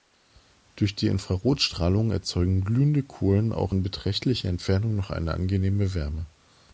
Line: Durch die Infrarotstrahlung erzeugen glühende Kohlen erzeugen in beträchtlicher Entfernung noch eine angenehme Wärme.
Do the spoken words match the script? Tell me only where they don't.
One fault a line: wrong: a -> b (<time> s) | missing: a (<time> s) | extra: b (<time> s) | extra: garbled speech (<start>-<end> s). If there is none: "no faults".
wrong: erzeugen -> auch (3.5 s)